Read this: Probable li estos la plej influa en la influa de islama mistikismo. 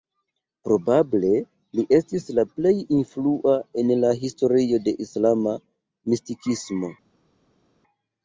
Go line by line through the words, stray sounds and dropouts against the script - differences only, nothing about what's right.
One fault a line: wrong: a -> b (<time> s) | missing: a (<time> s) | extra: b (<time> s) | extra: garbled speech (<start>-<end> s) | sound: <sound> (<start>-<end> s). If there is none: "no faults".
wrong: estos -> estis (2.0 s)
wrong: influa -> historio (4.2 s)